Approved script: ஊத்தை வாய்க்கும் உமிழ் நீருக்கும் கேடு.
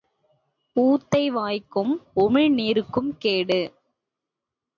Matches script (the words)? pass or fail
pass